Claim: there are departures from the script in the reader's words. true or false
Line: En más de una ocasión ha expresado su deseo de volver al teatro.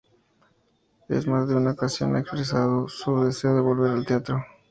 false